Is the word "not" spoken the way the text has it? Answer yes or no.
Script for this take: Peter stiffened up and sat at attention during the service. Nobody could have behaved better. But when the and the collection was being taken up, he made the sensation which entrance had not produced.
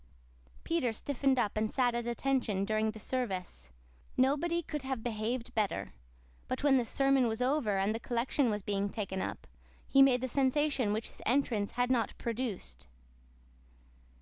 yes